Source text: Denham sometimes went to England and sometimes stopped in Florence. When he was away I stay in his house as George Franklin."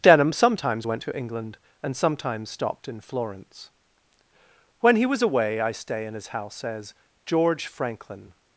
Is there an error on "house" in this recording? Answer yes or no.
no